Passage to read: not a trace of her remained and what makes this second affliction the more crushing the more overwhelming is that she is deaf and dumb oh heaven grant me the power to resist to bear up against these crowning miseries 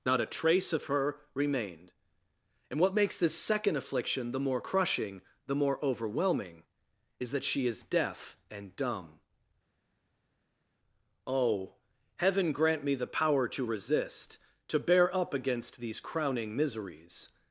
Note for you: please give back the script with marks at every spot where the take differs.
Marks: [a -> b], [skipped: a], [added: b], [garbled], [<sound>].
not a trace of her remained and what makes this second affliction the more crushing the more overwhelming is that she is deaf and dumb oh heaven grant me the power to resist to bear up against these crowning miseries